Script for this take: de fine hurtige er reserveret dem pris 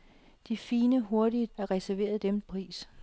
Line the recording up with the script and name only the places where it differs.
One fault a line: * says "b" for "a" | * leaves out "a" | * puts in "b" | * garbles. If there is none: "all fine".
all fine